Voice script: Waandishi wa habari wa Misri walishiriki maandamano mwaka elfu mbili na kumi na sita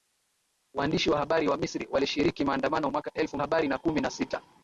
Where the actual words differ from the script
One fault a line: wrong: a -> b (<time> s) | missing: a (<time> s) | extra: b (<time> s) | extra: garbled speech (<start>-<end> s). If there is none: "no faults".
wrong: mbili -> habari (3.4 s)